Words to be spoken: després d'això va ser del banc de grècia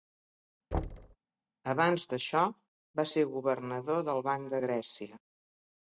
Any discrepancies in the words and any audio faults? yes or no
yes